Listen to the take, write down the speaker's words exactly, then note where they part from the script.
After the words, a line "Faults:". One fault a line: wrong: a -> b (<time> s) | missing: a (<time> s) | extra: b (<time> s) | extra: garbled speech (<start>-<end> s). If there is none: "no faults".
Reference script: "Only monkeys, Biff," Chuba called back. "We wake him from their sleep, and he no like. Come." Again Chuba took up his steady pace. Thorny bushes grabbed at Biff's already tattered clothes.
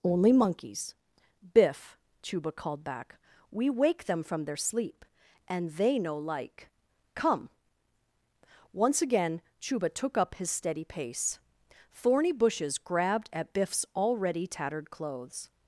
"Only monkeys, Biff," Chuba called back. "We wake them from their sleep, and they no like. Come." Once again Chuba took up his steady pace. Thorny bushes grabbed at Biff's already tattered clothes.
Faults:
wrong: him -> them (4.0 s)
wrong: he -> they (5.7 s)
extra: Once (8.7 s)